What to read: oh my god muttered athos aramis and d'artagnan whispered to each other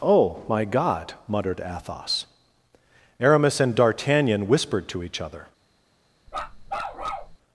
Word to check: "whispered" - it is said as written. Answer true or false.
true